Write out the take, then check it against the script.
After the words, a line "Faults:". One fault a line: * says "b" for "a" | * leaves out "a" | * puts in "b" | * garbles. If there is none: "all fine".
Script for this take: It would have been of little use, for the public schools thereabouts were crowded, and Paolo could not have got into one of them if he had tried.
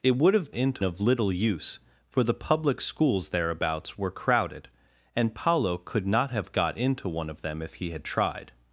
It would have into of little use, for the public schools thereabouts were crowded, and Paolo could not have got into one of them if he had tried.
Faults:
* says "into" for "been"